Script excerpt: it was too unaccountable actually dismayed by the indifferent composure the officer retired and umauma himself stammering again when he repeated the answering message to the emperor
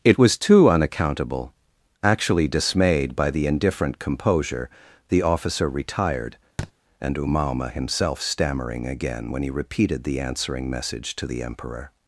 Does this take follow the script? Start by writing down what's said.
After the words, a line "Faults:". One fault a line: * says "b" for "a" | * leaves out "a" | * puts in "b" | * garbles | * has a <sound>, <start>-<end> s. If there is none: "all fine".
it was too unaccountable actually dismayed by the indifferent composure the officer retired and umauma himself stammering again when he repeated the answering message to the emperor
Faults:
* has a thud, 6.6-6.7 s